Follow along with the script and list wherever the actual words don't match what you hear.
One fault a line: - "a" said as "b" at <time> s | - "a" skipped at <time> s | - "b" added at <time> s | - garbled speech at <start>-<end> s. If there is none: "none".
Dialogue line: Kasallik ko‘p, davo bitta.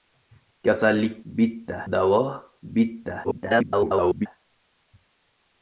- "ko‘p" said as "bitta" at 1.2 s
- garbled speech at 3.2-4.3 s